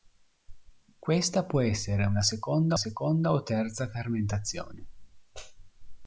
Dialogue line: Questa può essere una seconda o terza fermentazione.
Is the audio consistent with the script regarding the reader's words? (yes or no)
no